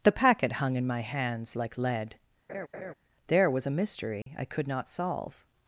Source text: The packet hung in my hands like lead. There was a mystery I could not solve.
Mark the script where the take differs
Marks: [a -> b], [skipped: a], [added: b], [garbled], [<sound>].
The packet hung in my hands like lead. [laugh] There was a mystery [dropout] I could not solve.